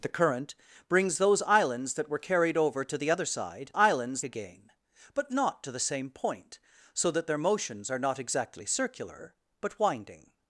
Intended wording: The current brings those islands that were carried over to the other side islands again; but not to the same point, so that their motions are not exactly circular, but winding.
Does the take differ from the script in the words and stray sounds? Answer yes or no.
no